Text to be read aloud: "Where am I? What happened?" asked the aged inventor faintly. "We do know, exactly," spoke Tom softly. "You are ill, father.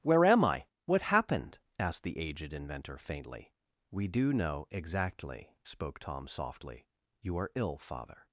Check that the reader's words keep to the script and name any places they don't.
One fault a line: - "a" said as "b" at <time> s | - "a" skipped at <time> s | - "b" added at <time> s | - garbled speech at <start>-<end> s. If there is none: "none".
none